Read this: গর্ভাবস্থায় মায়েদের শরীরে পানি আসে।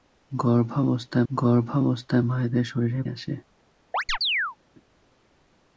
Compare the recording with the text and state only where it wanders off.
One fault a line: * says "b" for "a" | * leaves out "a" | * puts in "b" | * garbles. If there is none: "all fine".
* puts in "গর্ভাবস্থায়"
* leaves out "পানি"